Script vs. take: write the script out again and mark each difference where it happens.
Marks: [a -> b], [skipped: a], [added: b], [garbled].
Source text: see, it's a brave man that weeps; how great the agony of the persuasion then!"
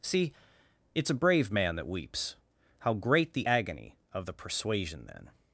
see, it's a brave man that weeps; how great the agony of the persuasion then!"